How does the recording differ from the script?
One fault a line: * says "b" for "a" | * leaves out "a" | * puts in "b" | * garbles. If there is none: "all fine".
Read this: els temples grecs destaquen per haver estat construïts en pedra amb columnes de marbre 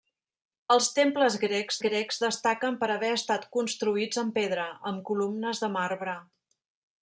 * puts in "grecs"